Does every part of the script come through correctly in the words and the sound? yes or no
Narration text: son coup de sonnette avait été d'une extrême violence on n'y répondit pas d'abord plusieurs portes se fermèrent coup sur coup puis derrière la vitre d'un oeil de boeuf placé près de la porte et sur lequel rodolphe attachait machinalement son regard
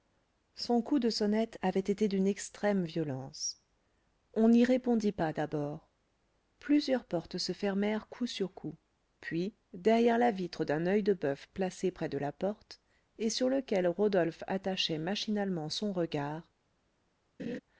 no